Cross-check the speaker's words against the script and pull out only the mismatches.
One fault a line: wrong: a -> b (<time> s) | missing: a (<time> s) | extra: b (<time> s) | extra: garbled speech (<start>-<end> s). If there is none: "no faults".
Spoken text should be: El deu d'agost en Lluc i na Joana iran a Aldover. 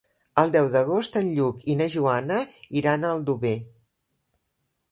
no faults